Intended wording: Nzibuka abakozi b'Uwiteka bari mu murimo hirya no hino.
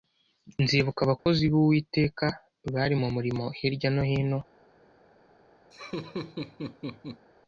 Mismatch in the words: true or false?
false